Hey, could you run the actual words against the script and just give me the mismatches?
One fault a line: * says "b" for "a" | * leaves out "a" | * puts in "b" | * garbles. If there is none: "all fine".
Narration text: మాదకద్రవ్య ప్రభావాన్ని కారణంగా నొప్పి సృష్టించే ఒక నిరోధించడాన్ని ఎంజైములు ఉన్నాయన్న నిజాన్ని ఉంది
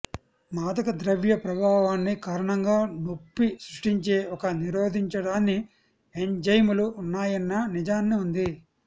all fine